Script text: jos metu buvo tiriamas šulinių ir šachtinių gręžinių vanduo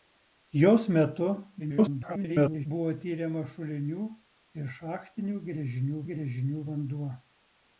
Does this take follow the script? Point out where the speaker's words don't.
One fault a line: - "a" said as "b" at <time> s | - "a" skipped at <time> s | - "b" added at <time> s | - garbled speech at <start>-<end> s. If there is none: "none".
- garbled speech at 1.6-2.7 s
- "gręžinių" added at 6.1 s